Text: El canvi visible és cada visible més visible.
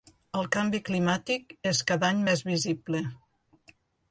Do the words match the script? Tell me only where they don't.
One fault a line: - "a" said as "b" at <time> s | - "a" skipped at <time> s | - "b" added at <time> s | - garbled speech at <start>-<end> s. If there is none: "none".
- "visible" said as "climàtic" at 0.9 s
- "visible" said as "any" at 2.1 s